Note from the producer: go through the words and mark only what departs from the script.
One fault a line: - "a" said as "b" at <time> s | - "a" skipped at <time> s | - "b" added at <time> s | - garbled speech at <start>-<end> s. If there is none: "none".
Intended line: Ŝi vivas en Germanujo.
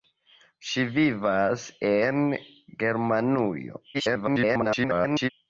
- garbled speech at 3.9-5.3 s